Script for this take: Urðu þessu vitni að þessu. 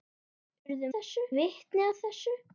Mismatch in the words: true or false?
false